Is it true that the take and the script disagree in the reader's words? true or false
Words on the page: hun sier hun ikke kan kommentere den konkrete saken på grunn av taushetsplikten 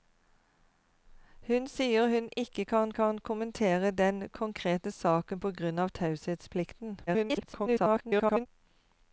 true